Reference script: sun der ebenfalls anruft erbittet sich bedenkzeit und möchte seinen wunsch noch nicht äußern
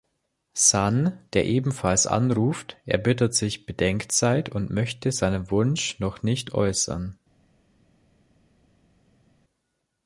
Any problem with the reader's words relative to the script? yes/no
no